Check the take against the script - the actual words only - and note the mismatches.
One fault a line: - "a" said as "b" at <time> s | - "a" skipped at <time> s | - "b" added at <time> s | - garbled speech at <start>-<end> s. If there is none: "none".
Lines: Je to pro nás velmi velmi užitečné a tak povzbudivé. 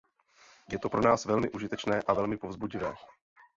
- "velmi" skipped at 1.5 s
- "tak" said as "velmi" at 2.1 s